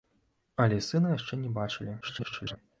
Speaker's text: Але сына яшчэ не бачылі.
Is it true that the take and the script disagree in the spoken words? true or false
true